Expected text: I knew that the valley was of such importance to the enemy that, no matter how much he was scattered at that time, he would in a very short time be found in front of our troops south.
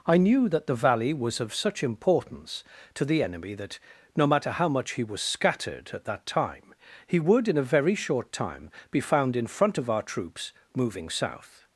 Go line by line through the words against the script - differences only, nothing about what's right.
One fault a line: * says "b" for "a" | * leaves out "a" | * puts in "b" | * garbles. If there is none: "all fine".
* puts in "moving"